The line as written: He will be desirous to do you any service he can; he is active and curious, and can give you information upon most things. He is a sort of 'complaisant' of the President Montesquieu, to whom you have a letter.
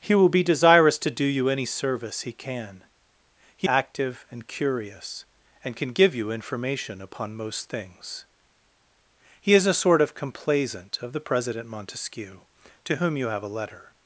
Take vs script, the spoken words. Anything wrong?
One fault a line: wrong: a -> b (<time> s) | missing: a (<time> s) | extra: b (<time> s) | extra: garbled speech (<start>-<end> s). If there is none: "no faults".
missing: is (3.7 s)